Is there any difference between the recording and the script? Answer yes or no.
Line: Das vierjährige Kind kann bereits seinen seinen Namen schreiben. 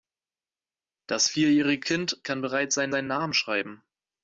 no